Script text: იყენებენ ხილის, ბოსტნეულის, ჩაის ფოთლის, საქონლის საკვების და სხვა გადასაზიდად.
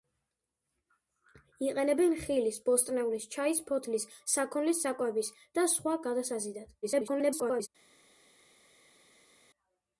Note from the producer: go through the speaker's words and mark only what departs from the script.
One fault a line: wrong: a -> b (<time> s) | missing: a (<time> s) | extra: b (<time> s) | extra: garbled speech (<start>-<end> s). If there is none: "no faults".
extra: garbled speech (6.8-7.7 s)